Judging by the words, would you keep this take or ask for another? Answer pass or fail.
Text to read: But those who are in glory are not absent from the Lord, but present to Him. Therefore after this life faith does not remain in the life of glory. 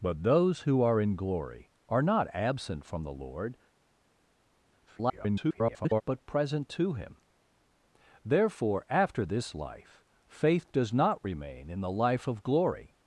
fail